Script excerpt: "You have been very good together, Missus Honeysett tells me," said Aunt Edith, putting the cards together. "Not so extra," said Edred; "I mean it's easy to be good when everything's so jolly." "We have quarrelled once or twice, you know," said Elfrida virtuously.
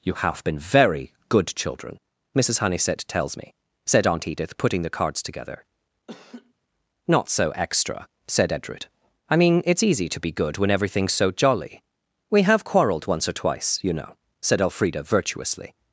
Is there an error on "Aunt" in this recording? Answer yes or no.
no